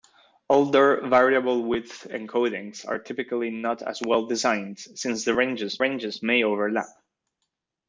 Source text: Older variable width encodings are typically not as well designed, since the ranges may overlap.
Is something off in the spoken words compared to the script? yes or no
yes